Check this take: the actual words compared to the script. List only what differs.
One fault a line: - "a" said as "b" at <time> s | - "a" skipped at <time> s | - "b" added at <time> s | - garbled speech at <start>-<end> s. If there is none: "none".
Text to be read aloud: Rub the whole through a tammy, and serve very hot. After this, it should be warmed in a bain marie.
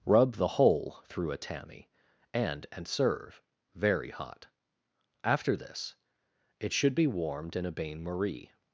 - "and" added at 2.7 s